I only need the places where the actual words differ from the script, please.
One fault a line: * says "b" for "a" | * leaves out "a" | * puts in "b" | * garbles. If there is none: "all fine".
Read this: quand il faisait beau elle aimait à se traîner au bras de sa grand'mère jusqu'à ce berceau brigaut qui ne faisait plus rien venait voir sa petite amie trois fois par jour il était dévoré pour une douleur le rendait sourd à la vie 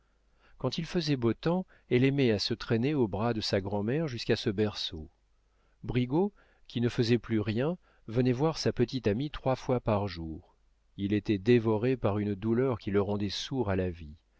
* puts in "temps"
* says "par" for "pour"
* puts in "qui"